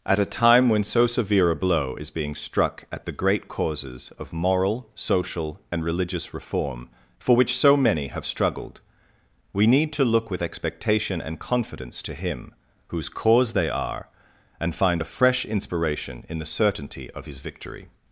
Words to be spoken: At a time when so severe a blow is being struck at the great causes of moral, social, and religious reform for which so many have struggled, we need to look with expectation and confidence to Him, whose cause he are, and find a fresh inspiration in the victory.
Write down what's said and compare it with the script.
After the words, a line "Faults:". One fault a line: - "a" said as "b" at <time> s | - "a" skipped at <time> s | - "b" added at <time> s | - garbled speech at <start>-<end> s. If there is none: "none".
At a time when so severe a blow is being struck at the great causes of moral, social, and religious reform for which so many have struggled, we need to look with expectation and confidence to Him, whose cause they are, and find a fresh inspiration in the certainty of His victory.
Faults:
- "he" said as "they" at 13.5 s
- "certainty of His" added at 16.5 s